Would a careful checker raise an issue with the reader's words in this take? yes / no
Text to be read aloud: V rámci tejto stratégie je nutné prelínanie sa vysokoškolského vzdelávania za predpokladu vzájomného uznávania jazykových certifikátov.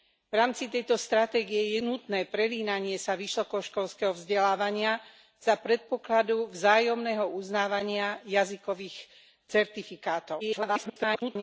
yes